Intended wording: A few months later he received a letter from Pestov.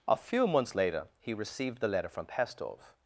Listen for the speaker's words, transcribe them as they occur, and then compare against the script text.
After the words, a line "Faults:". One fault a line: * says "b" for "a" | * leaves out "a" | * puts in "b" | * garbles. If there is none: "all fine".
A few months later he received the letter from Pestov.
Faults:
* says "the" for "a"